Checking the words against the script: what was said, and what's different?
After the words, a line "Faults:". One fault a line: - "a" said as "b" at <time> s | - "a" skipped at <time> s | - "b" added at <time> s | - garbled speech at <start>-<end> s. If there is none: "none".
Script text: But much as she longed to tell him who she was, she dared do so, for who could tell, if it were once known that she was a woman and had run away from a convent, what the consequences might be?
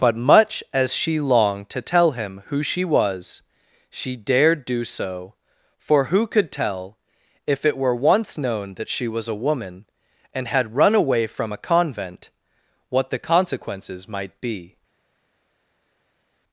But much as she longed to tell him who she was, she dared do so, for who could tell, if it were once known that she was a woman and had run away from a convent, what the consequences might be?
Faults:
none